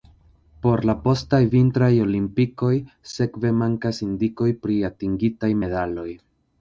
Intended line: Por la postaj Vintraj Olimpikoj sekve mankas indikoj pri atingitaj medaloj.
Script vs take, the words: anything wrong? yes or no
no